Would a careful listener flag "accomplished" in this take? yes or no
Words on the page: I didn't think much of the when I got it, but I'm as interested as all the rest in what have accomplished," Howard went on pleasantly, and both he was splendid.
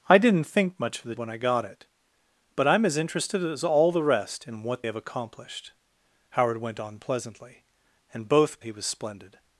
no